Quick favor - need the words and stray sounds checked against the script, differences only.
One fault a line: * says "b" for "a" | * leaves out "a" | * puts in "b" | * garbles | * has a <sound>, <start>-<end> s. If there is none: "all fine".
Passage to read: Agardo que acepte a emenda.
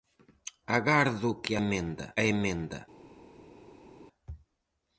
* says "emenda" for "acepte"